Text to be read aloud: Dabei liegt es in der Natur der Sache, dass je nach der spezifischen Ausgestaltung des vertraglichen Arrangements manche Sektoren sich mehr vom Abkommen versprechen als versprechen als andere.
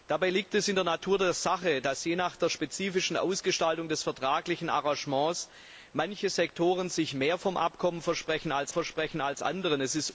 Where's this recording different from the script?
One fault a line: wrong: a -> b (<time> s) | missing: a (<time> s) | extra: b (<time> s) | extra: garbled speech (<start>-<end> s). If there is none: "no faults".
no faults